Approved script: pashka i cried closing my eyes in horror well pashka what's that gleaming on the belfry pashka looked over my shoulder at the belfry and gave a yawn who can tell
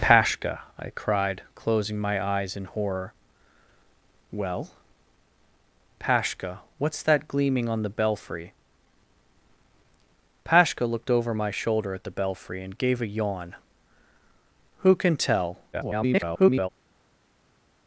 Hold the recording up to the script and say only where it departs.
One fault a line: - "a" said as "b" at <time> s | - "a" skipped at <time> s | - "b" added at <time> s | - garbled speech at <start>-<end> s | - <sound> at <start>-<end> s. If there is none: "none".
- garbled speech at 15.7-16.7 s